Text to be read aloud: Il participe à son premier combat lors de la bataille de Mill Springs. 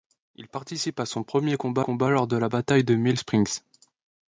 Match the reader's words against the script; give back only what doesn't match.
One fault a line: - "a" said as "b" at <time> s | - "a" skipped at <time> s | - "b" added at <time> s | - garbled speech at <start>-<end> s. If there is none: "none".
- "combat" added at 1.8 s